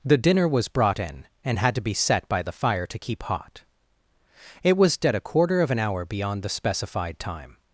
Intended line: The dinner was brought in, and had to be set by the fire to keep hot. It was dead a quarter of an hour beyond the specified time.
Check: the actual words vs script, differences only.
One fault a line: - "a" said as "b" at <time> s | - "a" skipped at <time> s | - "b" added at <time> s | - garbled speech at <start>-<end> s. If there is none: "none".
none